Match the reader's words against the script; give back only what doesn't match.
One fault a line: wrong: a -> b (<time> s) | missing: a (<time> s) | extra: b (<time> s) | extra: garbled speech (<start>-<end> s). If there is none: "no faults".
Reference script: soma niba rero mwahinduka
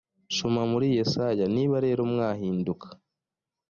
extra: muri yesaya (0.7 s)